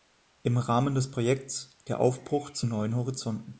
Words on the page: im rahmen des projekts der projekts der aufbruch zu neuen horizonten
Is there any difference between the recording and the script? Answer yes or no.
yes